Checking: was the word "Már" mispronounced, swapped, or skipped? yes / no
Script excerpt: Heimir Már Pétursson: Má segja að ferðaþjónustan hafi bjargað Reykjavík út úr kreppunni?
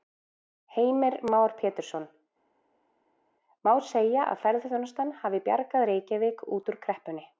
no